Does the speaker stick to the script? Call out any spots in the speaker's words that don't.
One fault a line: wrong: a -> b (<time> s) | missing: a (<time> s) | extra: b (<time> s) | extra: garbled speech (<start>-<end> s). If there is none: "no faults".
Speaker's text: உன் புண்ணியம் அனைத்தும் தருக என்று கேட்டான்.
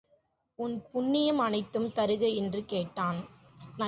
no faults